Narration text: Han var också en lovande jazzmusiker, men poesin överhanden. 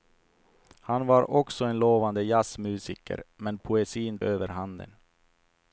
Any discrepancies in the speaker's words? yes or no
no